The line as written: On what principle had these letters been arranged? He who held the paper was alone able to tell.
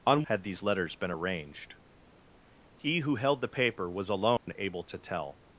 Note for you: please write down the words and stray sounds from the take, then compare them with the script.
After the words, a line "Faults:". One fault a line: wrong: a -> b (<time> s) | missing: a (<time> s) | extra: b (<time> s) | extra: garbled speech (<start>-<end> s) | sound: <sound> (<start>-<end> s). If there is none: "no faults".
On had these letters been arranged? He who held the paper was alone able to tell.
Faults:
missing: what principle (0.2 s)
sound: dropout (4.4-4.5 s)